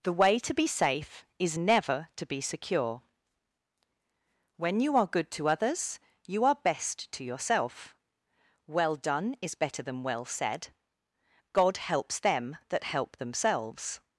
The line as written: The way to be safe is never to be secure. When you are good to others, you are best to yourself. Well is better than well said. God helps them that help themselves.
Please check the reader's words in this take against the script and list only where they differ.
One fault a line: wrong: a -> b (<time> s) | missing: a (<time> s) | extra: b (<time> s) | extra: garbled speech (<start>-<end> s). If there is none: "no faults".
extra: done (9.0 s)